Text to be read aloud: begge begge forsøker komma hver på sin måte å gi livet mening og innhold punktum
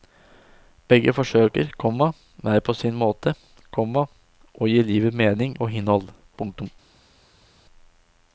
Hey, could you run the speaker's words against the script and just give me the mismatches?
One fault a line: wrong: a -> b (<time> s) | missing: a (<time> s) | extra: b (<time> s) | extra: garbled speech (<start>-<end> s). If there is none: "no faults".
missing: begge (1.1 s)
extra: komma (3.8 s)